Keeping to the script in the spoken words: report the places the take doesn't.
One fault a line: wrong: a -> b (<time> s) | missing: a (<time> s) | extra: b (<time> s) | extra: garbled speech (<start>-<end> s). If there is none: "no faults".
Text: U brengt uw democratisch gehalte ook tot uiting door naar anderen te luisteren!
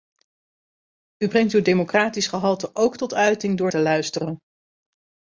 missing: naar anderen (3.7 s)